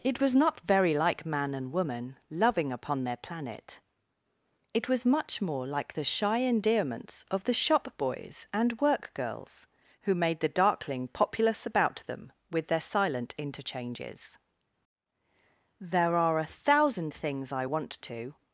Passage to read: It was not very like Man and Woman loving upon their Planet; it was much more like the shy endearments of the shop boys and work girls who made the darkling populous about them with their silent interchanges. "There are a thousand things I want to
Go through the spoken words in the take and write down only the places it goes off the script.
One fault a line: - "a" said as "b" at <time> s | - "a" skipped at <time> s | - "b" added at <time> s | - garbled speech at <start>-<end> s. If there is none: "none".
none